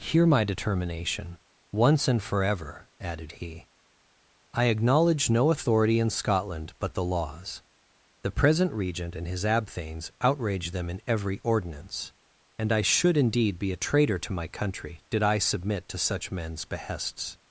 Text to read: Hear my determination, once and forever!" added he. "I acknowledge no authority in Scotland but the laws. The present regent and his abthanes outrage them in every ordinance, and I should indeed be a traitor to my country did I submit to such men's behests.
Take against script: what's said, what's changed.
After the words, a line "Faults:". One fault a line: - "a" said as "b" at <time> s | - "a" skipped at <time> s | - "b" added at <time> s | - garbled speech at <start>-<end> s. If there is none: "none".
Hear my determination, once and forever!" added he. "I acknowledge no authority in Scotland but the laws. The present regent and his abthanes outrage them in every ordinance, and I should indeed be a traitor to my country did I submit to such men's behests.
Faults:
none